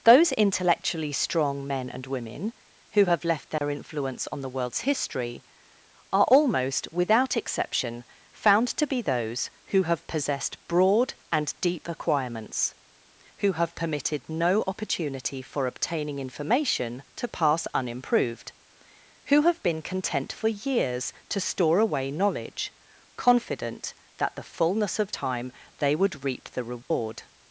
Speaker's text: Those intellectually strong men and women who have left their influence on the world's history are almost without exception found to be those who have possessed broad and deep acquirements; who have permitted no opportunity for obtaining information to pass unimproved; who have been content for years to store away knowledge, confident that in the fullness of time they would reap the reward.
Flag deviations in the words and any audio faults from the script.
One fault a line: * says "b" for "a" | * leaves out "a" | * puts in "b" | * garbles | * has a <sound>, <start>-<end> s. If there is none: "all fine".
* has a dropout, 3.6-3.6 s
* leaves out "in"
* has a dropout, 26.8-26.9 s